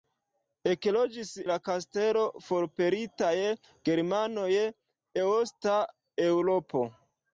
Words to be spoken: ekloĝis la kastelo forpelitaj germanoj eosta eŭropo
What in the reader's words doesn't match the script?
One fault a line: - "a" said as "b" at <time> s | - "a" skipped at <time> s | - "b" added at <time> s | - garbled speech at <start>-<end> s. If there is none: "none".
none